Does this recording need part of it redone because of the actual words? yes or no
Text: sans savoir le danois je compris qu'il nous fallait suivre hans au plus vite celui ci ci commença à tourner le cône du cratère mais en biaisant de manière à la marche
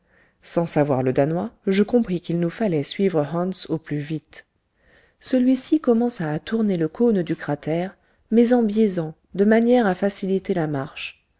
yes